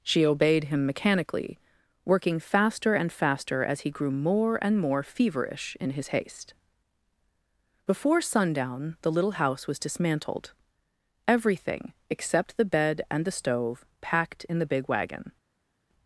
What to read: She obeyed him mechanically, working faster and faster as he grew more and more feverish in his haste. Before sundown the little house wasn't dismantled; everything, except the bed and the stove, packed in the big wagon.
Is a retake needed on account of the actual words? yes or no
yes